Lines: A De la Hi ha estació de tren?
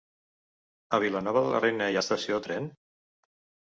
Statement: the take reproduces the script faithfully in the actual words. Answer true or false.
false